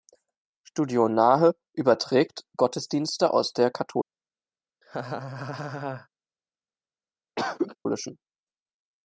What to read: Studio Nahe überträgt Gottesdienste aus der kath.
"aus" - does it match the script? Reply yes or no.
yes